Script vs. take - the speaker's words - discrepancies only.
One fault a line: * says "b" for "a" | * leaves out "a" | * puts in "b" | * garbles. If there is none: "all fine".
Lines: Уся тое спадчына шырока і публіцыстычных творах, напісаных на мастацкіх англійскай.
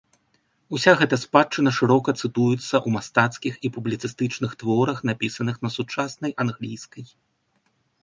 * says "гэта" for "тое"
* puts in "цытуецца ў мастацкіх"
* says "сучаснай" for "мастацкіх"